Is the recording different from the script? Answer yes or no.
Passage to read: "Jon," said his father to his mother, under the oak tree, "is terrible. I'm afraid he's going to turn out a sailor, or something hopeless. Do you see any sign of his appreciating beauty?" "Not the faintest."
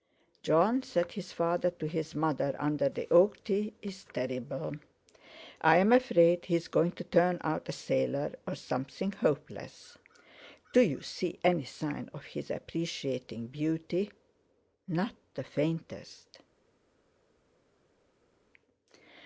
no